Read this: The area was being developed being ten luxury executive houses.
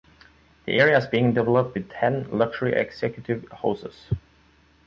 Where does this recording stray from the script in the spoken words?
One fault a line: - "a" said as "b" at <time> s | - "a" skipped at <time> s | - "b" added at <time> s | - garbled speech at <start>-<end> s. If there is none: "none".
- "was" said as "is" at 1.0 s
- "being" said as "with" at 1.7 s